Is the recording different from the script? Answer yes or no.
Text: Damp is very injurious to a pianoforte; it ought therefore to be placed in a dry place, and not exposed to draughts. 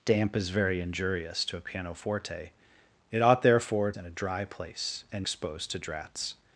yes